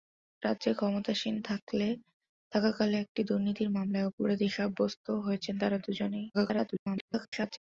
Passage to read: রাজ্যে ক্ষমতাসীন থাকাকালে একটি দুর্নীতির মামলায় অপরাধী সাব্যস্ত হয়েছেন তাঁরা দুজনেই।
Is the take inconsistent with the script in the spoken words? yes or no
yes